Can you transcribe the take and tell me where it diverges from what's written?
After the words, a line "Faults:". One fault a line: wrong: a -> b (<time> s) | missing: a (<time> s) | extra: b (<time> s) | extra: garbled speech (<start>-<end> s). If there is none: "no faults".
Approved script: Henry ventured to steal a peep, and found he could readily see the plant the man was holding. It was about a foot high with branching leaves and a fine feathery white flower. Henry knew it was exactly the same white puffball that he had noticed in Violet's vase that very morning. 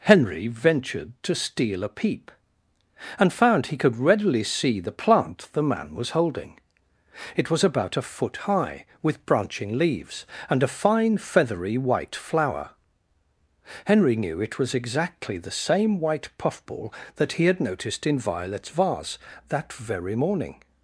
Henry ventured to steal a peep, and found he could readily see the plant the man was holding. It was about a foot high with branching leaves and a fine feathery white flower. Henry knew it was exactly the same white puffball that he had noticed in Violet's vase that very morning.
Faults:
no faults